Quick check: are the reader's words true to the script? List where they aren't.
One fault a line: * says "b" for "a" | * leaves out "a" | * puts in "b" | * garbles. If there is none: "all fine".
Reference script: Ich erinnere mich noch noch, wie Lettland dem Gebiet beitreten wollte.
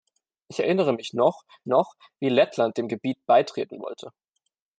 all fine